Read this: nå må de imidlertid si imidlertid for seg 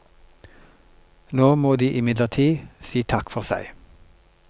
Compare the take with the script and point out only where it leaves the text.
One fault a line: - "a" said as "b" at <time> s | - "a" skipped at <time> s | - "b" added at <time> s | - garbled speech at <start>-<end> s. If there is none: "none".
- "imidlertid" said as "takk" at 3.0 s